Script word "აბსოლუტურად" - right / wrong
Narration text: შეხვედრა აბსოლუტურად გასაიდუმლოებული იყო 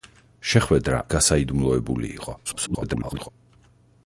wrong